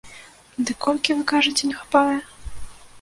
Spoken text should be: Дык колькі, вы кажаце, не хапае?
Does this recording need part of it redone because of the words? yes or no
no